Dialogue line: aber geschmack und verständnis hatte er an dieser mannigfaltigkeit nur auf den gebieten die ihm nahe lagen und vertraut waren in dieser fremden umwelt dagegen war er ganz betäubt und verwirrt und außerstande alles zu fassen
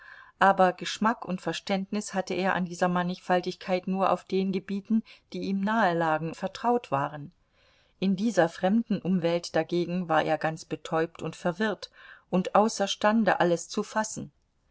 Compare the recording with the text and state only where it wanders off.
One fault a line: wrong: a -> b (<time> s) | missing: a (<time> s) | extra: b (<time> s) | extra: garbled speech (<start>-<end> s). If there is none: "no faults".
missing: und (6.3 s)